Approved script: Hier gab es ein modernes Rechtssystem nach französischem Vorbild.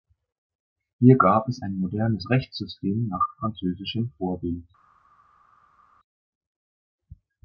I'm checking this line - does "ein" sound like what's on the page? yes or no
yes